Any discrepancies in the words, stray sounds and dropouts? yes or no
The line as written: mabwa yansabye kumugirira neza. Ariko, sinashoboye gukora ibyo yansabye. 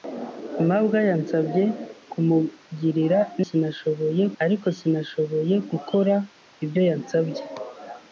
yes